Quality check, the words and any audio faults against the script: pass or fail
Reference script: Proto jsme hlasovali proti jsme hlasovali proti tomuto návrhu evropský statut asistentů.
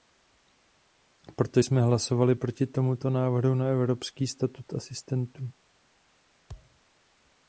fail